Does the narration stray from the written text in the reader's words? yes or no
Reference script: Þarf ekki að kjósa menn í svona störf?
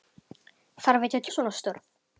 yes